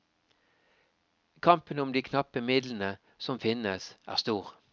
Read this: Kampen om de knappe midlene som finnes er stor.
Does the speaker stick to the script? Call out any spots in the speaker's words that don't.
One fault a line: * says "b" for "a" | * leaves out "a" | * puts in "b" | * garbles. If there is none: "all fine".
all fine